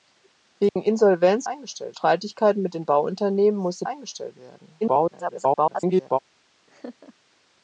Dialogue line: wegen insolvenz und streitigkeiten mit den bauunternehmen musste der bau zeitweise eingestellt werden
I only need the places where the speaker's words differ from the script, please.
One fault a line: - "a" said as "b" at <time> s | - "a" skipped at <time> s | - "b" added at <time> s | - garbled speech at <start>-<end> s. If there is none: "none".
- "und" said as "eingestellt" at 1.4 s
- "der bau zeitweise" skipped at 3.8 s
- garbled speech at 4.8-6.2 s